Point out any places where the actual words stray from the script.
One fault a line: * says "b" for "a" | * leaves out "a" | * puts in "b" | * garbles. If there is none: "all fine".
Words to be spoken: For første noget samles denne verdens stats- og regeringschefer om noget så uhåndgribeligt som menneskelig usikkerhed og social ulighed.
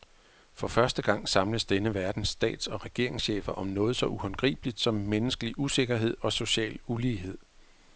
* says "gang" for "noget"